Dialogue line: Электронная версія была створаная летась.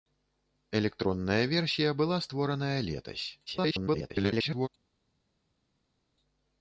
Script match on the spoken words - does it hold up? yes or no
no